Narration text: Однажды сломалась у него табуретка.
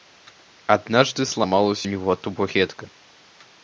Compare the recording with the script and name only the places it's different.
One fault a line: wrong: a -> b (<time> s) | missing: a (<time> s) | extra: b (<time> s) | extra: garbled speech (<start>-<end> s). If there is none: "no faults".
no faults